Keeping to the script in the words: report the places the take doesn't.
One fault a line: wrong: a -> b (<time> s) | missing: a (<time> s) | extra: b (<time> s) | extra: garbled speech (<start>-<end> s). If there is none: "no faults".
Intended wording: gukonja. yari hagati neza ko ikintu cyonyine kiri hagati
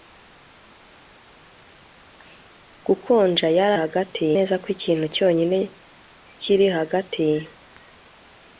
no faults